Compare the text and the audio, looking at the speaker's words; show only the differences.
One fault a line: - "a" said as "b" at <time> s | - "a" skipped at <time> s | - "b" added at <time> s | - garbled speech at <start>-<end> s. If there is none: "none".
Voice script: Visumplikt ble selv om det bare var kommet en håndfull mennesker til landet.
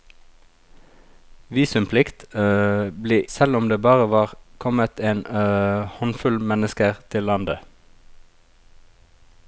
none